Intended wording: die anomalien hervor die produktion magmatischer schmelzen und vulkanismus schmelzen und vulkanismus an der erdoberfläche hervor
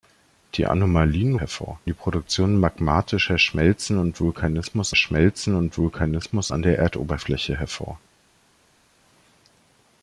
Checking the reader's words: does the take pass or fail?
pass